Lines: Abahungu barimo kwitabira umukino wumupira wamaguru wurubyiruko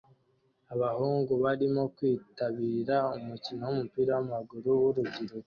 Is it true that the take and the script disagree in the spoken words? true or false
false